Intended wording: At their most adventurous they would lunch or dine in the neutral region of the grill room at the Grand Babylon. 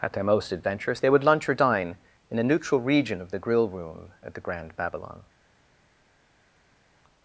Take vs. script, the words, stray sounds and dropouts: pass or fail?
fail